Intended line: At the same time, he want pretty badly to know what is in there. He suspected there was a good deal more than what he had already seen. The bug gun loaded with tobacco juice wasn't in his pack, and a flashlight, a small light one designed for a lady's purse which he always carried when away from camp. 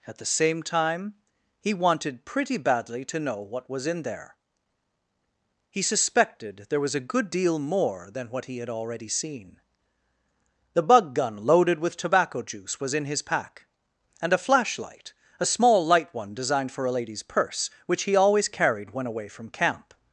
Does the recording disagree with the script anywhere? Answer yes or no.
yes